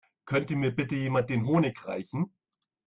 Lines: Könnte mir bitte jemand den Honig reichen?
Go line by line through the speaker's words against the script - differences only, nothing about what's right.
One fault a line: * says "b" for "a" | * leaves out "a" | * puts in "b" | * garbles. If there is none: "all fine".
all fine